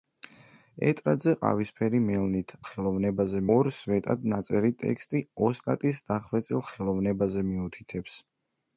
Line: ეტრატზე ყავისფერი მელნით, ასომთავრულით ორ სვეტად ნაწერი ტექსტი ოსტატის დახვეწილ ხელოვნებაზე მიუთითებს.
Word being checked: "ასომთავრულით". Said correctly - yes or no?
no